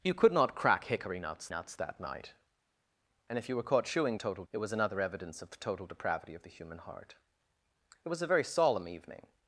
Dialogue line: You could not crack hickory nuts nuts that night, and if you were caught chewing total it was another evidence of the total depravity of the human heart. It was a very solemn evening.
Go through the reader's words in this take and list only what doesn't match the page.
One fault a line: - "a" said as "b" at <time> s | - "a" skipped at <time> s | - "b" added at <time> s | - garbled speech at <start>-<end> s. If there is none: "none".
none